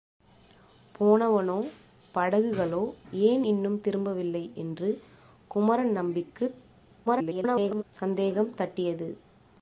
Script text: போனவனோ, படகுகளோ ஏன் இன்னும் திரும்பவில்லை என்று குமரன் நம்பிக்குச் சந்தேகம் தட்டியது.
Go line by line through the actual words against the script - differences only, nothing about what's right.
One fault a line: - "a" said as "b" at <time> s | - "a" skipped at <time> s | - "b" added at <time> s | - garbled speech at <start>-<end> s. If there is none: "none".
- garbled speech at 7.1-7.8 s